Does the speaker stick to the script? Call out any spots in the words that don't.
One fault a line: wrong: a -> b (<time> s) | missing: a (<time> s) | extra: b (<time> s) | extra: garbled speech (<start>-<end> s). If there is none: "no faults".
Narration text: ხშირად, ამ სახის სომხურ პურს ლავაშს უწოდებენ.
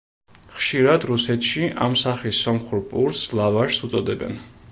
extra: რუსეთში (1.1 s)